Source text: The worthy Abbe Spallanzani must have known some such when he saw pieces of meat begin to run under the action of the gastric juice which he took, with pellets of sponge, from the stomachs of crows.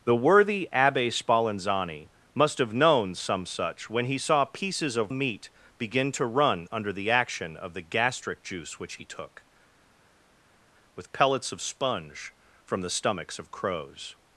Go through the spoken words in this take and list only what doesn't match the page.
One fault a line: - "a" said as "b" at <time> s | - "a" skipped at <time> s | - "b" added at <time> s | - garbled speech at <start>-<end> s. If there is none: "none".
none